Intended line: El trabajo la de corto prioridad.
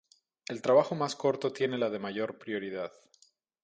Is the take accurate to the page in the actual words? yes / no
no